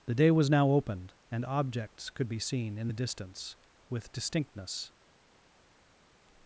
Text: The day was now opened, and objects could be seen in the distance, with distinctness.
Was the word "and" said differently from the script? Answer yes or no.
no